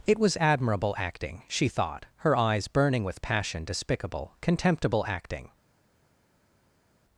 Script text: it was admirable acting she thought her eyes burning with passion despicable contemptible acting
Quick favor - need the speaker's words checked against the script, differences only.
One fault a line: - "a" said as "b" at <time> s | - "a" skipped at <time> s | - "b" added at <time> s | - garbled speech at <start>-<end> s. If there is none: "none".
none